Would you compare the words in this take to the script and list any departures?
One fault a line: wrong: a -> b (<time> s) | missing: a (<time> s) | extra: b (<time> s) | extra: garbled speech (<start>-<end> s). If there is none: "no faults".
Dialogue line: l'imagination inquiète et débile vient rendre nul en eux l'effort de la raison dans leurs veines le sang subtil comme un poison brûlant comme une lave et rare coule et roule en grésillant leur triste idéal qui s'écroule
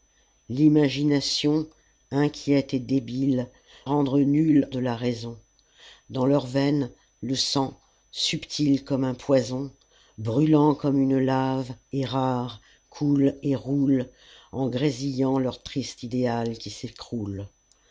missing: vient (3.5 s)
missing: en eux l'effort (4.7 s)